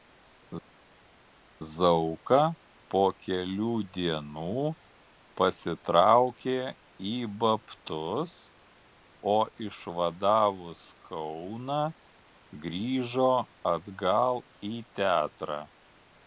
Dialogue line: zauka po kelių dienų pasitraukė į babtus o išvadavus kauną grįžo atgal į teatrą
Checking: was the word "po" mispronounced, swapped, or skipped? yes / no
no